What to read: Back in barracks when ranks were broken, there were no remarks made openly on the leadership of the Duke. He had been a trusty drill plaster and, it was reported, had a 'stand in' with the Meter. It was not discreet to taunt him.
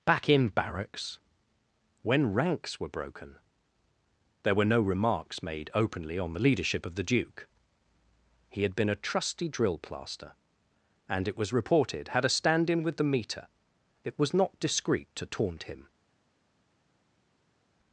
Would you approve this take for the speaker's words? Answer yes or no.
yes